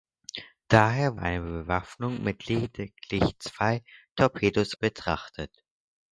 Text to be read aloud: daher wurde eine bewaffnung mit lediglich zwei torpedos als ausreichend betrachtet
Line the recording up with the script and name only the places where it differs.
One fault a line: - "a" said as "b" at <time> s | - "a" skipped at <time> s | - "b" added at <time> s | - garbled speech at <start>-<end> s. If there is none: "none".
- "wurde" skipped at 1.2 s
- "als ausreichend" skipped at 4.7 s